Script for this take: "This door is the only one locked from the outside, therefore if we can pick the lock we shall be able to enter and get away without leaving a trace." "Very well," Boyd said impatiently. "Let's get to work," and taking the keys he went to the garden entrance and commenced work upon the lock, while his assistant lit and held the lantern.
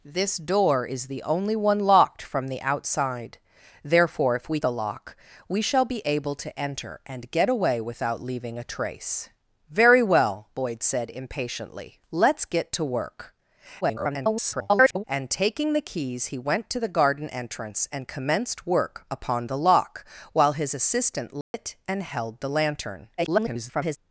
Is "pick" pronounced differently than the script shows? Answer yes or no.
yes